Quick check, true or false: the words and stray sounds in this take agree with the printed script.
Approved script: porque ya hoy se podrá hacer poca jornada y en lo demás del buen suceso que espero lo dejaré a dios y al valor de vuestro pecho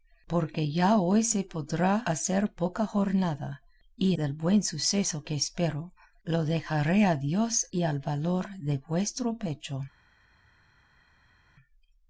false